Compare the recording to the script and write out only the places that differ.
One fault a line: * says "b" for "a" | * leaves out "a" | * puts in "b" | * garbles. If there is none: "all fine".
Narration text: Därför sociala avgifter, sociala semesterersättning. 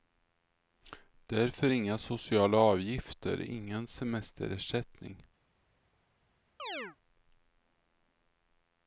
* puts in "inga"
* says "ingen" for "sociala"